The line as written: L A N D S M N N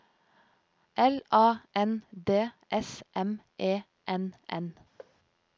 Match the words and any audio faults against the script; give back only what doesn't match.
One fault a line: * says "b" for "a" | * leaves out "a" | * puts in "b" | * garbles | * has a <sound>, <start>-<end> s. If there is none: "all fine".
* puts in "E"
* has a thud, 5.0-5.2 s